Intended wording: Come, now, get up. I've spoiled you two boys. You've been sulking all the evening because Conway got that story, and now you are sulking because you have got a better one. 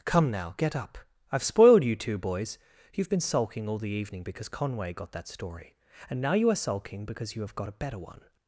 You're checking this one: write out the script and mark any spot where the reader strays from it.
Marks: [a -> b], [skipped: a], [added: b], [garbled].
Come, now, get up. I've spoiled you two boys. You've been sulking all the evening because Conway got that story, and now you are sulking because you have got a better one.